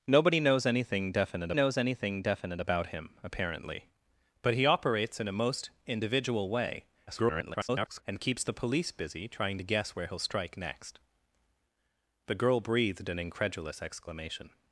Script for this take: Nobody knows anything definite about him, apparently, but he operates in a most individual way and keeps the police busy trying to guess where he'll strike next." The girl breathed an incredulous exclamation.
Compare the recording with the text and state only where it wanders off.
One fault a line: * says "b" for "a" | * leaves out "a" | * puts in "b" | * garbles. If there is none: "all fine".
* puts in "knows anything definite"
* garbles